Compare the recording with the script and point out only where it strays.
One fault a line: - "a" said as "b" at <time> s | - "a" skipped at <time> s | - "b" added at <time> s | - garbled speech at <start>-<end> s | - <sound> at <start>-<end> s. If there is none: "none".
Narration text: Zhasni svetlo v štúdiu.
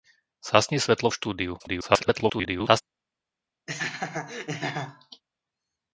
- garbled speech at 1.6-2.8 s
- laugh at 3.7-5.2 s